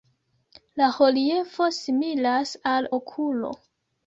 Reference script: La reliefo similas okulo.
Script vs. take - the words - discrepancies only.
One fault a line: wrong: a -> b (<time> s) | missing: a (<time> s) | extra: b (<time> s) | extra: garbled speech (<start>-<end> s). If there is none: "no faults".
extra: al (2.7 s)